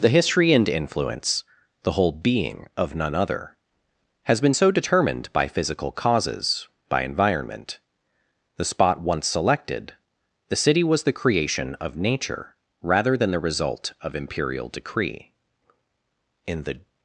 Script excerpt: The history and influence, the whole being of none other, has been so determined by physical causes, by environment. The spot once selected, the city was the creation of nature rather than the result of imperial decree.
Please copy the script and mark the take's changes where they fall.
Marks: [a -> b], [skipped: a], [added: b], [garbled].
The history and influence, the whole being of none other, has been so determined by physical causes, by environment. The spot once selected, the city was the creation of nature rather than the result of imperial decree. [added: In the]